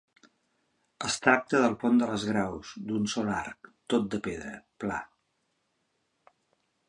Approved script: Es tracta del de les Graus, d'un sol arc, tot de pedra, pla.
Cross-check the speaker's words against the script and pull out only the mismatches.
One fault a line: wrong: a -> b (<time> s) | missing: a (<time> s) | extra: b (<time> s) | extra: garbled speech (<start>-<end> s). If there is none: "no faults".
extra: pont (1.8 s)